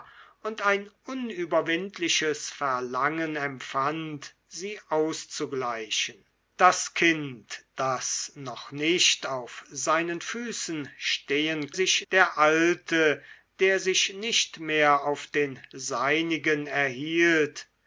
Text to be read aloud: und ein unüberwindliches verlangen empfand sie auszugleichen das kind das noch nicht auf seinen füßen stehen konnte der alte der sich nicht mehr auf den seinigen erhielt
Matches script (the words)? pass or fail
fail